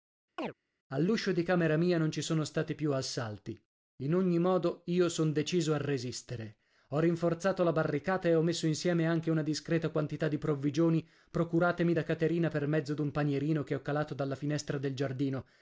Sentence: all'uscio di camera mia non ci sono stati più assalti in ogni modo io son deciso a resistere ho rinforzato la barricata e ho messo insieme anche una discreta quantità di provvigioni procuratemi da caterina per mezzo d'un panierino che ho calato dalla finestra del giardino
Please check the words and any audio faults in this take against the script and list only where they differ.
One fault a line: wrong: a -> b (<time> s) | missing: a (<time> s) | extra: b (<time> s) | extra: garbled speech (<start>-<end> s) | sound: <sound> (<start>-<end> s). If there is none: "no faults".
sound: chirp (0.4-0.5 s)